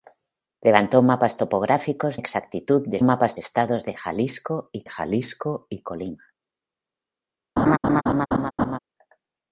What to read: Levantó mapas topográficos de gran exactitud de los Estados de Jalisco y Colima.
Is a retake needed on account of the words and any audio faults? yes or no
yes